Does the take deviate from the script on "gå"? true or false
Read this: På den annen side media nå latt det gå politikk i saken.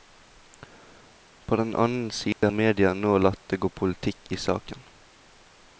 false